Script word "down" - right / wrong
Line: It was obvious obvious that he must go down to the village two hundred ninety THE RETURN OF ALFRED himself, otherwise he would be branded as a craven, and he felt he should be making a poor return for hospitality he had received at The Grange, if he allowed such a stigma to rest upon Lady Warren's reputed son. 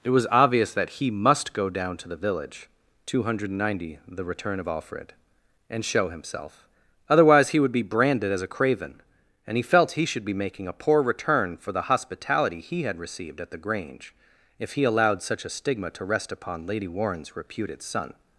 right